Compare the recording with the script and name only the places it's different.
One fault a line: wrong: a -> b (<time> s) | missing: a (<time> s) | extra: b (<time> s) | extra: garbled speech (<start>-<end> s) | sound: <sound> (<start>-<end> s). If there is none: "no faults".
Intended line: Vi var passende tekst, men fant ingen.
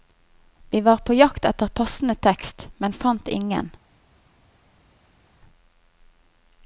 extra: på jakt etter (1.0 s)